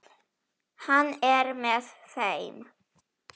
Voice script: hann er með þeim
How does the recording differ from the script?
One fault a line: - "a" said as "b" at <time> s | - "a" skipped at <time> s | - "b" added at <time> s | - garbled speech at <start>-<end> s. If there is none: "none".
none